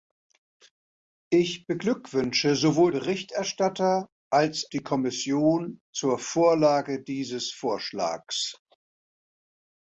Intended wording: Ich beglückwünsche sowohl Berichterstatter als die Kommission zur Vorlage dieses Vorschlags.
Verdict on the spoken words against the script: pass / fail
pass